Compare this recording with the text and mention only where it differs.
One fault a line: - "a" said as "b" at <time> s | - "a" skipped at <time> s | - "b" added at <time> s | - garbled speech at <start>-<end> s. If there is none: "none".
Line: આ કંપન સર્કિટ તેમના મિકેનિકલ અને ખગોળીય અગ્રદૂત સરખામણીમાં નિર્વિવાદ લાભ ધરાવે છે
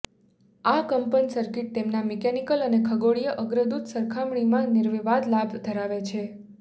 none